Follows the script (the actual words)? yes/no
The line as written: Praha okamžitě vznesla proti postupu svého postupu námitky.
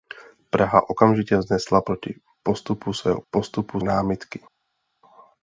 yes